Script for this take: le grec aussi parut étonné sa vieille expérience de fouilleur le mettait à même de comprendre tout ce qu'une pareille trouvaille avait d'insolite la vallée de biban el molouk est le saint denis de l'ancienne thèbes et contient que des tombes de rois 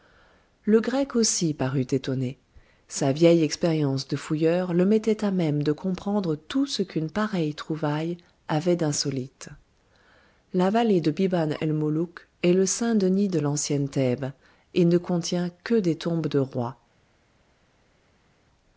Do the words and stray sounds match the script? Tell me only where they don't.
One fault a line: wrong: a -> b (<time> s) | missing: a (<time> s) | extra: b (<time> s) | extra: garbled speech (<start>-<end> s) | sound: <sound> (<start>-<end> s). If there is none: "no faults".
extra: ne (14.8 s)